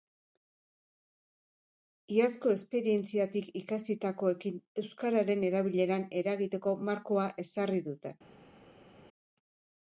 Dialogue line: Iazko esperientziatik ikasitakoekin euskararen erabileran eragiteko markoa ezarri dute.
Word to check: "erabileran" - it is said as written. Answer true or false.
true